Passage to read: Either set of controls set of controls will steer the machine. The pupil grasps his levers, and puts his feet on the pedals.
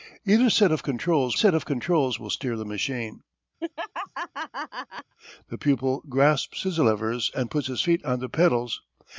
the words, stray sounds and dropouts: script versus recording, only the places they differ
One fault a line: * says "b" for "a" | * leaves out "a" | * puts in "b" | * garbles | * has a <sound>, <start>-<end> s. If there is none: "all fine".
* has a laugh, 3.6-5.1 s